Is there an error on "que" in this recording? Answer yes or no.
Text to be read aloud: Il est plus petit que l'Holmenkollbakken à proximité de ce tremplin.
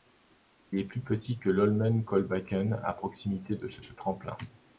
no